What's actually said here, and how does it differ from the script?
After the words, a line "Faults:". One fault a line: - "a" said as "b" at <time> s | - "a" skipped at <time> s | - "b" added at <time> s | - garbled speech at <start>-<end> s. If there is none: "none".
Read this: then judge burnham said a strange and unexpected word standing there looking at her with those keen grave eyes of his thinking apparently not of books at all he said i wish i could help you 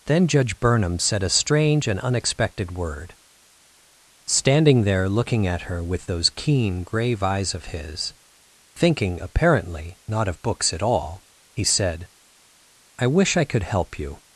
then judge burnham said a strange and unexpected word standing there looking at her with those keen grave eyes of his thinking apparently not of books at all he said i wish i could help you
Faults:
none